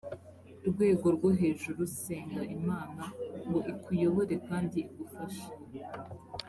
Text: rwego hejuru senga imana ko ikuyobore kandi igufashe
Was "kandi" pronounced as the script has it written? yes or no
yes